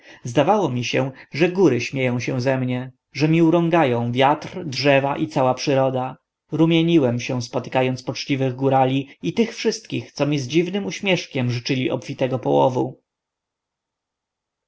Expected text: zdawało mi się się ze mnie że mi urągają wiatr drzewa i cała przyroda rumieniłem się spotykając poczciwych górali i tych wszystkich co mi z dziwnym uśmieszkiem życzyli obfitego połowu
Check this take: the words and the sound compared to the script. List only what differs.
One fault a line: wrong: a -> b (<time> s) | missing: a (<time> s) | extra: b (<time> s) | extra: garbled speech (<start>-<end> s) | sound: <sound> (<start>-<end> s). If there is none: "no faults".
extra: że góry śmieją (1.3 s)